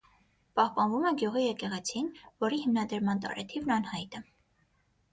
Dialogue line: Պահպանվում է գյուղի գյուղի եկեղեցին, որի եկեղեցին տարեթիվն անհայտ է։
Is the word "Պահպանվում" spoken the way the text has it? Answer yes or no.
yes